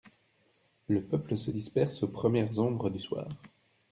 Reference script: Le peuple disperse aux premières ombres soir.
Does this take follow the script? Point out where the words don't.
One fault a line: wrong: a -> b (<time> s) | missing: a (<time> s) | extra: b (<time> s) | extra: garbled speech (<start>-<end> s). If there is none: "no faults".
extra: se (1.4 s)
extra: du (2.9 s)